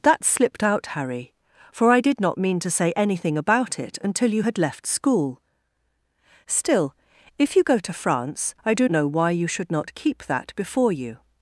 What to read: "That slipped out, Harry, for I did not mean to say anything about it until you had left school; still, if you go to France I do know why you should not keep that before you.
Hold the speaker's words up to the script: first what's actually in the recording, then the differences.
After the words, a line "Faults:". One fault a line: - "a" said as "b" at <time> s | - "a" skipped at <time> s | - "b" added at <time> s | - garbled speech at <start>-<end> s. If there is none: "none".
"That slipped out, Harry, for I did not mean to say anything about it until you had left school; still, if you go to France I do know why you should not keep that before you.
Faults:
none